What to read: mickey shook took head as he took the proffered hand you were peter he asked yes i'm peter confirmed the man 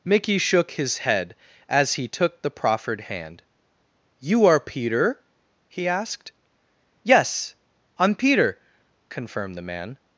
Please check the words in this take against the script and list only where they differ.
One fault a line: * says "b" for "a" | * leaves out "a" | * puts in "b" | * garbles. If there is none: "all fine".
* says "his" for "took"
* says "are" for "were"